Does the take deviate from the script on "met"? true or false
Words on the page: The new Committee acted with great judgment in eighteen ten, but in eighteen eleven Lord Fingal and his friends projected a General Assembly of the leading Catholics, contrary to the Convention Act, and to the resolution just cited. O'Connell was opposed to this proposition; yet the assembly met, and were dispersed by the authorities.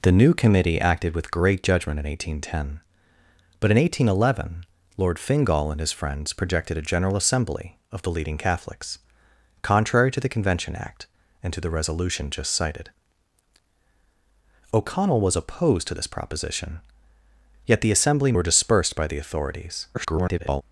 true